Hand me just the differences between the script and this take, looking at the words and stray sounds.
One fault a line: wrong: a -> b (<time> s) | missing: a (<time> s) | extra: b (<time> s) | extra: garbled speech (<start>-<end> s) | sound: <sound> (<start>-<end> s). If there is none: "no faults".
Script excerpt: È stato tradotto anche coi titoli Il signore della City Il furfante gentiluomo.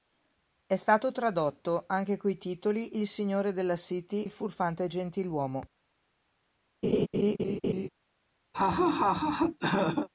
sound: laugh (6.8-7.9 s)
sound: laugh (8.5-10.1 s)